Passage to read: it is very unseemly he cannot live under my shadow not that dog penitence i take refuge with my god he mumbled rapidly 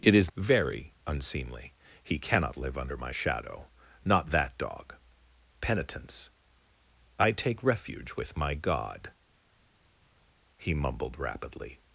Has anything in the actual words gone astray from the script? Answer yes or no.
no